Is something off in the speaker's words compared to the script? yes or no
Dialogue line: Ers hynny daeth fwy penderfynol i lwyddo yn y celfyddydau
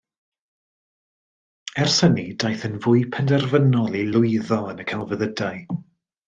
yes